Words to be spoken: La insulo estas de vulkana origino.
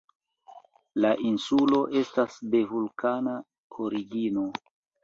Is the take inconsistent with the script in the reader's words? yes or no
no